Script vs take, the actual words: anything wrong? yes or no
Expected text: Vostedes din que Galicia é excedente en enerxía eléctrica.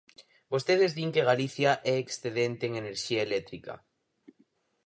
no